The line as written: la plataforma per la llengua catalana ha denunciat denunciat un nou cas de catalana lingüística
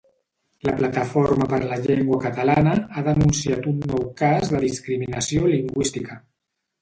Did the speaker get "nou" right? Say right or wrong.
right